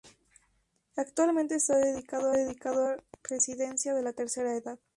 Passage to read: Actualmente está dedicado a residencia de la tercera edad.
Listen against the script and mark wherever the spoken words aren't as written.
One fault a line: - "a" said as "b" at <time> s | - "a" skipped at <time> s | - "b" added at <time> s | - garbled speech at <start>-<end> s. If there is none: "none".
- "dedicado" added at 2.3 s